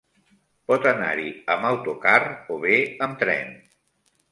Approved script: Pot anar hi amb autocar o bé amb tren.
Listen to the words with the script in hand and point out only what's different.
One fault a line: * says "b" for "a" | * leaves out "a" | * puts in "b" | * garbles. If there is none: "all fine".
all fine